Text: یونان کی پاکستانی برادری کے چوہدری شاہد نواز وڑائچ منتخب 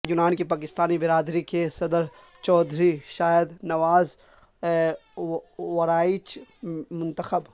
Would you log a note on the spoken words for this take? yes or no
yes